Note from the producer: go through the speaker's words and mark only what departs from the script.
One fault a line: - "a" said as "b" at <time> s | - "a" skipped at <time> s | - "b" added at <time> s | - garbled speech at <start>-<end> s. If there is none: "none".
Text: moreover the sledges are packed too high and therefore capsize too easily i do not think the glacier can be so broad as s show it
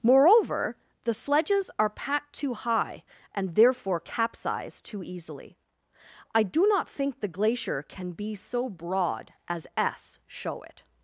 none